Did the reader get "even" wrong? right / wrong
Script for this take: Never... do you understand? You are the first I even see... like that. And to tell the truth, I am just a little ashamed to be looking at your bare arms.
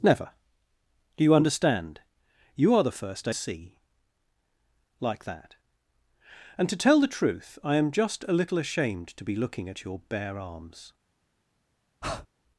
wrong